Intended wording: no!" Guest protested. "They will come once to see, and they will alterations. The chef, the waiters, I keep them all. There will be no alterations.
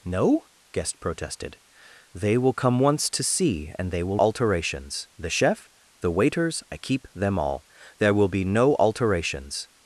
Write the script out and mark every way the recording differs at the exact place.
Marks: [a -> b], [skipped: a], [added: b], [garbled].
no!" Guest protested. "They will come once to see, and they will alterations. The chef, the waiters, I keep them all. There will be no alterations.